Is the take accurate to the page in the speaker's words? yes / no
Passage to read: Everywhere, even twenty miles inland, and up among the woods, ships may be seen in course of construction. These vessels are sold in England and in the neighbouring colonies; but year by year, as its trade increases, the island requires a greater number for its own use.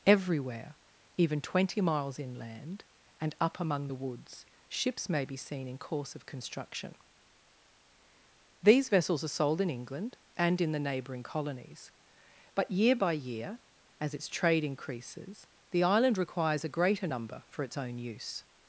yes